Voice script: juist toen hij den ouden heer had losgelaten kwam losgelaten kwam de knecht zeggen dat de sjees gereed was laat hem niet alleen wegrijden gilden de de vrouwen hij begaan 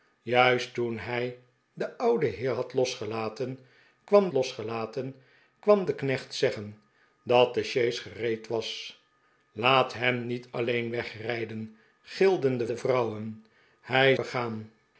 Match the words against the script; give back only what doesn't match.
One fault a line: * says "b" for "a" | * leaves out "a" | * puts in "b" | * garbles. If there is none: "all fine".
all fine